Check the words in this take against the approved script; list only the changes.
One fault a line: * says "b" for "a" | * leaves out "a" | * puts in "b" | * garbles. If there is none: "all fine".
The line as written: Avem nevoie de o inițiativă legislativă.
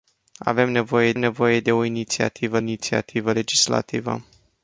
* puts in "nevoie"
* puts in "inițiativă"